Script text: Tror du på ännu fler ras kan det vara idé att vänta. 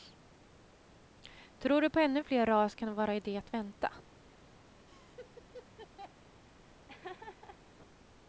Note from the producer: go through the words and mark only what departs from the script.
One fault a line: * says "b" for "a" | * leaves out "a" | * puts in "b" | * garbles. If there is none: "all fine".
all fine